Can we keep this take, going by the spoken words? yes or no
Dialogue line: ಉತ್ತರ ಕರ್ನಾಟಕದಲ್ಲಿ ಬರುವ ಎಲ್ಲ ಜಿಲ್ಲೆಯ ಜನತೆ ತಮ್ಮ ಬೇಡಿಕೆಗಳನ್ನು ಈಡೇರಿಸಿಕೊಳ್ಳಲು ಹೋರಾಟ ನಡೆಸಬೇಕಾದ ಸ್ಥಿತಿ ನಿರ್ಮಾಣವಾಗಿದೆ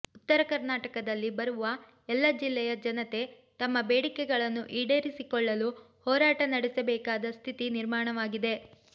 yes